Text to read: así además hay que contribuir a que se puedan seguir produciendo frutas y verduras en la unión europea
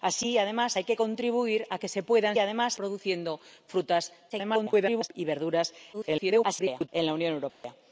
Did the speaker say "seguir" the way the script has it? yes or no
no